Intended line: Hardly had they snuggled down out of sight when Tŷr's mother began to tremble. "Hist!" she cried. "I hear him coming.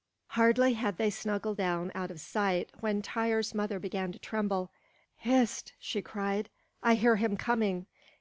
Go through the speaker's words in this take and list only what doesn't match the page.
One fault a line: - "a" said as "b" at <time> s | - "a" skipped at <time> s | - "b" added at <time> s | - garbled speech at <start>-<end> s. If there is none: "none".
none